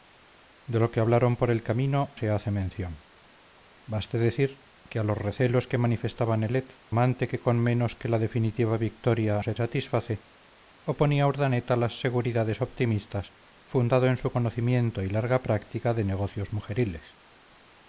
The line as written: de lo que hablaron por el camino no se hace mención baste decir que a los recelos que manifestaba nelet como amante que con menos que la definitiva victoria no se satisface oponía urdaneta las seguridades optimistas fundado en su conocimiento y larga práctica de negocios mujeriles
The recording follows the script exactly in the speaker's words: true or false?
false